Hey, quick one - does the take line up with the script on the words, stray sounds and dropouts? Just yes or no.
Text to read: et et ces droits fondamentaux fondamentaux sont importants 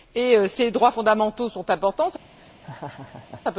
no